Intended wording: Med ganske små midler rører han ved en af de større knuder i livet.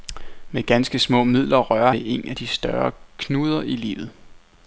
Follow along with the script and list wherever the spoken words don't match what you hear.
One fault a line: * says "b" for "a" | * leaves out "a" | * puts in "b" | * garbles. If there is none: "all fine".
* leaves out "han"